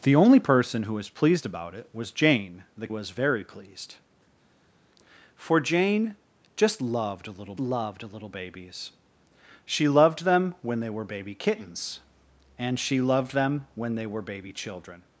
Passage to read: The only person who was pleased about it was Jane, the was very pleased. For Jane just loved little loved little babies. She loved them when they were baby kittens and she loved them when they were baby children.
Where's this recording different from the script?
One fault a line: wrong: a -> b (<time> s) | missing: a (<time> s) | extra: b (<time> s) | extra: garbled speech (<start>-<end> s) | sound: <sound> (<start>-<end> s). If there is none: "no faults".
no faults